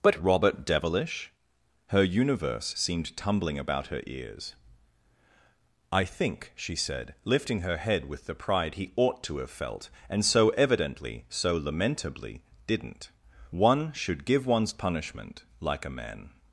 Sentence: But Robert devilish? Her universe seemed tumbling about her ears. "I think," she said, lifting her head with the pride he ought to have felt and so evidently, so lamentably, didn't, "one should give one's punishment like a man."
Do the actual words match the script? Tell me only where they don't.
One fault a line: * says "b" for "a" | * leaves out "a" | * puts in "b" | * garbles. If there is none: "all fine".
all fine